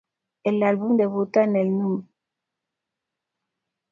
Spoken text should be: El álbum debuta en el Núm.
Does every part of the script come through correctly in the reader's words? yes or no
yes